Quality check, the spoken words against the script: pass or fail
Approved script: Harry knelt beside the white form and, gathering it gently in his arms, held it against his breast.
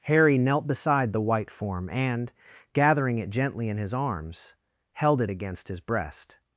pass